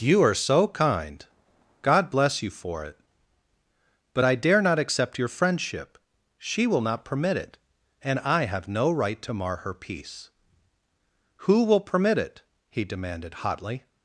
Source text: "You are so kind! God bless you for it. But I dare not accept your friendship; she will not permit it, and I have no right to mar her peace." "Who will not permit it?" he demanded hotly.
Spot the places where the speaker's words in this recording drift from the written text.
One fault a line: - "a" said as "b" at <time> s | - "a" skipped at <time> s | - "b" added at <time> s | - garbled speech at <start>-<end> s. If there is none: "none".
- "not" skipped at 11.8 s